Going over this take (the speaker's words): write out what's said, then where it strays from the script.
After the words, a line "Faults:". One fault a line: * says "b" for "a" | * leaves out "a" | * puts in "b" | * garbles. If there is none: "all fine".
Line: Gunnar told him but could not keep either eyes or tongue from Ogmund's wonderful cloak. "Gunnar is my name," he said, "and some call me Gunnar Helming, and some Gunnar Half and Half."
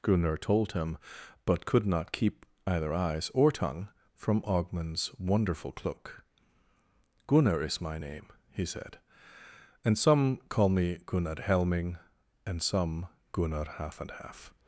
Gunnar told him but could not keep either eyes or tongue from Ogmund's wonderful cloak. "Gunnar is my name," he said, "and some call me Gunnar Helming, and some Gunnar Half and Half."
Faults:
all fine